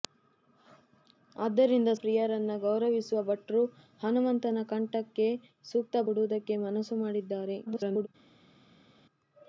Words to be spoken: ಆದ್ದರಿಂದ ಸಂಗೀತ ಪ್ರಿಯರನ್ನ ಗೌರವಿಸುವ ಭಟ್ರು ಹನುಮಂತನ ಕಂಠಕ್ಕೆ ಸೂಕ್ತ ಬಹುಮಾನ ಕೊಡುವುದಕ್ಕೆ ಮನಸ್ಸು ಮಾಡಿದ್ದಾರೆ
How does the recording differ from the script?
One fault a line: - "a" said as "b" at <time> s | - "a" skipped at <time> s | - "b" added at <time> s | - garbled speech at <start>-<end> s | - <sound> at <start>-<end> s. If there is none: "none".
- "ಸಂಗೀತ" skipped at 1.9 s
- "ಬಹುಮಾನ" skipped at 6.0 s
- garbled speech at 7.7-8.1 s